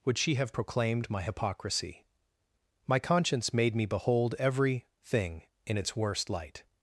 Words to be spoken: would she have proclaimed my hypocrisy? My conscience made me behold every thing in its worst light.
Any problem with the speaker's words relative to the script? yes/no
no